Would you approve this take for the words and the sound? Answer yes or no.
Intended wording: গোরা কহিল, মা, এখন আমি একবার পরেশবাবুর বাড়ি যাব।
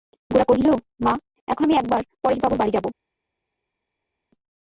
yes